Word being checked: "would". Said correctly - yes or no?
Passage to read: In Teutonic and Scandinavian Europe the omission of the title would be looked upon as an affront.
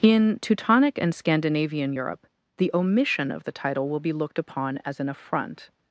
no